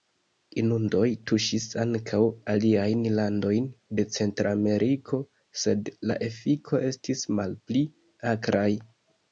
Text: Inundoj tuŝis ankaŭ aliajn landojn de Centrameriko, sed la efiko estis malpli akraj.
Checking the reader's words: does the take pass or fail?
pass